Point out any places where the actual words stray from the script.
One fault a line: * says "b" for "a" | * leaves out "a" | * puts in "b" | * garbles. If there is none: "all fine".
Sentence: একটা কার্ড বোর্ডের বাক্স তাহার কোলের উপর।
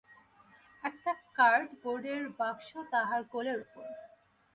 all fine